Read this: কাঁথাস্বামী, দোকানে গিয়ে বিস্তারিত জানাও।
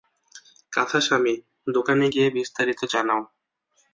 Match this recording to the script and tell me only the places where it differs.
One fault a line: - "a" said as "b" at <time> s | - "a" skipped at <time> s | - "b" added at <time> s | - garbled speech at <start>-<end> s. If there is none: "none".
none